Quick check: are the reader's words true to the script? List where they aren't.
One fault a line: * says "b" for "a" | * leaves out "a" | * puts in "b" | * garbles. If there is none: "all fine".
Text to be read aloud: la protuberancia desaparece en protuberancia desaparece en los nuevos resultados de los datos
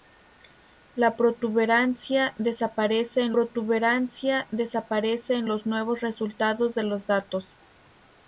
all fine